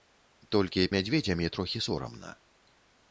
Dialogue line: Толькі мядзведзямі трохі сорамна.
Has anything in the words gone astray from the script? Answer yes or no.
no